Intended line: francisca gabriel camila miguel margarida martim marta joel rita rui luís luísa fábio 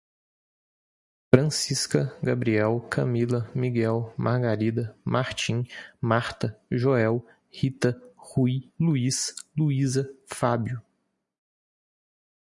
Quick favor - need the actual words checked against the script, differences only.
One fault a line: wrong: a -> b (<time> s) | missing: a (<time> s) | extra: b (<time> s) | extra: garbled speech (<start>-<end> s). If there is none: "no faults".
no faults